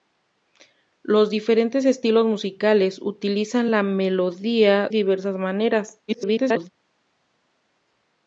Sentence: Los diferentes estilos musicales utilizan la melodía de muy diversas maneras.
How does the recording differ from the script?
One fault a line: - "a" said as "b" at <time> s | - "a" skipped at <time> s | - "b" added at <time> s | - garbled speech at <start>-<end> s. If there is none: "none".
- "de muy" skipped at 4.9 s
- garbled speech at 6.1-6.7 s